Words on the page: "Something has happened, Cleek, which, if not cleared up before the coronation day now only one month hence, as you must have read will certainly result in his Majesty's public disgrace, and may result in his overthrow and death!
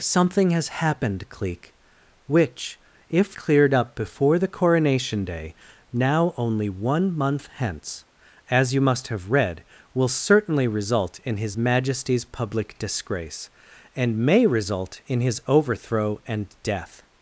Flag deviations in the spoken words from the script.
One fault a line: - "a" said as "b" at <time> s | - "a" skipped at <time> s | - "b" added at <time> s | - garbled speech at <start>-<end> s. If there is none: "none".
- "not" skipped at 3.4 s